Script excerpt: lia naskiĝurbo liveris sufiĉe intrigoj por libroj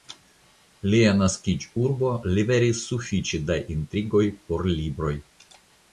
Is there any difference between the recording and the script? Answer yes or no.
yes